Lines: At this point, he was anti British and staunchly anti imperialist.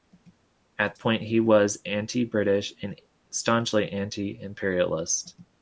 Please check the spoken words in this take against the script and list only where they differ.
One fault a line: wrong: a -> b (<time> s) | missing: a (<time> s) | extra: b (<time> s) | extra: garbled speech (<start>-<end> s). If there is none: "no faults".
missing: this (1.0 s)